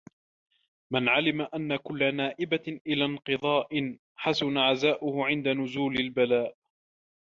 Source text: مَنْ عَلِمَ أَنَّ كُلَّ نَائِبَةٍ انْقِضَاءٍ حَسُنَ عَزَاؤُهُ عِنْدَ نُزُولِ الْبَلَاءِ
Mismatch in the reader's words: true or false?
true